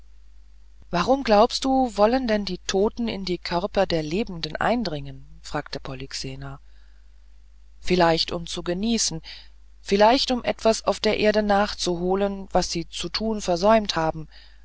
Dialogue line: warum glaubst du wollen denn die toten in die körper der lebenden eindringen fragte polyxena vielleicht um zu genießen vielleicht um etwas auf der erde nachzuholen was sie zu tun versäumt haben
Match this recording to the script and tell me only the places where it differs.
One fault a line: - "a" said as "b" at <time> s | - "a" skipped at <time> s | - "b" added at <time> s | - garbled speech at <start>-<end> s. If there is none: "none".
none